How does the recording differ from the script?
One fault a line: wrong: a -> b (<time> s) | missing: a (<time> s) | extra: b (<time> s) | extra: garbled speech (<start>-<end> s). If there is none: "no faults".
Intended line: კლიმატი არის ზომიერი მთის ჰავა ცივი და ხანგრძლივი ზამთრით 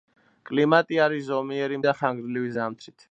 missing: მთის ჰავა ცივი (1.8 s)